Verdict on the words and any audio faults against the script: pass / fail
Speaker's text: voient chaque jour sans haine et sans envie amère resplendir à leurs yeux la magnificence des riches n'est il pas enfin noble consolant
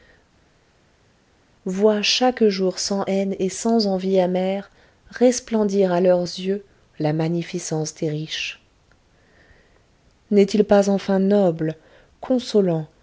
pass